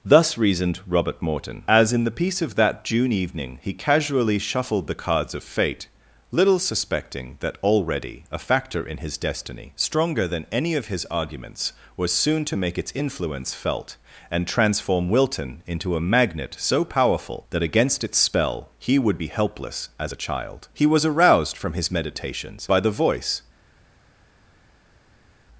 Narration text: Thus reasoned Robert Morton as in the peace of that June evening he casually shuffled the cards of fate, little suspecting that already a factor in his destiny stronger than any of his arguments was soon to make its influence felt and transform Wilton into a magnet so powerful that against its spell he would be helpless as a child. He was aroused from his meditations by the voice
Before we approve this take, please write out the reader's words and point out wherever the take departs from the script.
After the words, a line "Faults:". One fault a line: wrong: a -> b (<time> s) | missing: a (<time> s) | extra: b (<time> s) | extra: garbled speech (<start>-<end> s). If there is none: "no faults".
Thus reasoned Robert Morton as in the peace of that June evening he casually shuffled the cards of fate, little suspecting that already a factor in his destiny stronger than any of his arguments was soon to make its influence felt and transform Wilton into a magnet so powerful that against its spell he would be helpless as a child. He was aroused from his meditations by the voice
Faults:
no faults